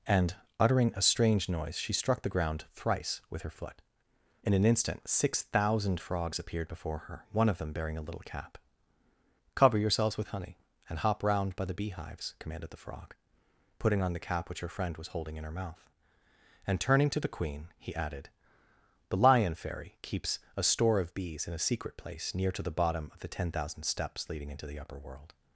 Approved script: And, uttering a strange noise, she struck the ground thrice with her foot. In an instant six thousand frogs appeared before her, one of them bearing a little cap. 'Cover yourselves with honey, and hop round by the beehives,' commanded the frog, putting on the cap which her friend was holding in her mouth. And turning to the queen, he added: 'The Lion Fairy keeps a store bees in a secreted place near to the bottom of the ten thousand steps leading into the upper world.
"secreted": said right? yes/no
no